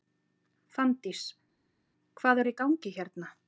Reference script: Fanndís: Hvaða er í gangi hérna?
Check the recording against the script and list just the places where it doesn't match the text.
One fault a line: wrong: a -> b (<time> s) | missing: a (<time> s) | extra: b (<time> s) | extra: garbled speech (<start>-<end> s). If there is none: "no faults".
no faults